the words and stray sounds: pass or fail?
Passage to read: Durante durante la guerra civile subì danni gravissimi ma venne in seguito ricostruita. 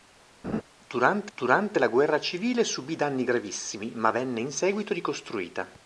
fail